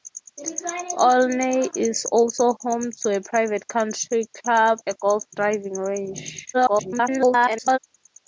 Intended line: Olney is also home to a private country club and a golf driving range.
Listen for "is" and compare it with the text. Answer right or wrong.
right